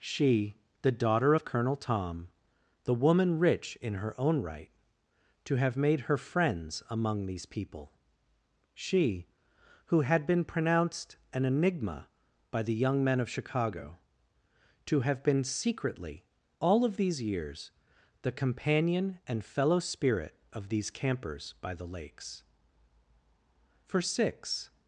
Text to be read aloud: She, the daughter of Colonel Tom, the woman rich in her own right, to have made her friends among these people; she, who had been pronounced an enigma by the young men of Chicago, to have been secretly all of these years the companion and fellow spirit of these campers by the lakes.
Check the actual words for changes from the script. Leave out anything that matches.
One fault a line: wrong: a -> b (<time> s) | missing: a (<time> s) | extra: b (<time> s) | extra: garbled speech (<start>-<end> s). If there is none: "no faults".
extra: For six (23.8 s)